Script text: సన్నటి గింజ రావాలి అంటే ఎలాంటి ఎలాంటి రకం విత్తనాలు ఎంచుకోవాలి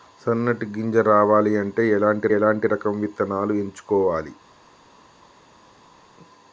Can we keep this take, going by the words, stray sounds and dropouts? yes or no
yes